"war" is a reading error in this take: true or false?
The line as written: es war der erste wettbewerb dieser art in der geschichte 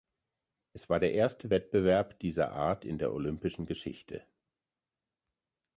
false